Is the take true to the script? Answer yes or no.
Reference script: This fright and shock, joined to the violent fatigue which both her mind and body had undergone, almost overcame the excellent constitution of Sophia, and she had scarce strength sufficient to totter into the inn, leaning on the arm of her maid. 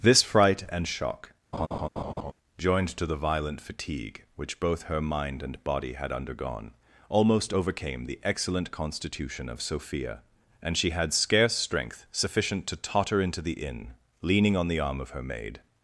yes